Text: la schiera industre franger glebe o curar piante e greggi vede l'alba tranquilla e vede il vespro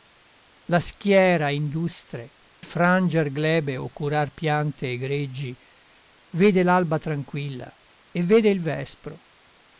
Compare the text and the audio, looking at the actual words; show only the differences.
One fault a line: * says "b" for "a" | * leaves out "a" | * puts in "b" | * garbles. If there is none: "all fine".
all fine